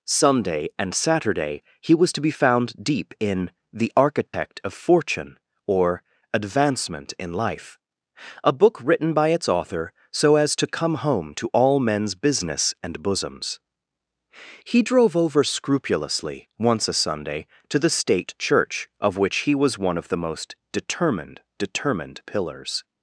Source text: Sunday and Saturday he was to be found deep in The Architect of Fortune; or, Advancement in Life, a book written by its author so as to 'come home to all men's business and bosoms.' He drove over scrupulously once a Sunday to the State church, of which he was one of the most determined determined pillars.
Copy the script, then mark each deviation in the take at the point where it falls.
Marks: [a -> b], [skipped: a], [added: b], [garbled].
Sunday and Saturday he was to be found deep in The Architect of Fortune; or, Advancement in Life, a book written by its author so as to 'come home to all men's business and bosoms.' He drove over scrupulously once a Sunday to the State church, of which he was one of the most determined determined pillars.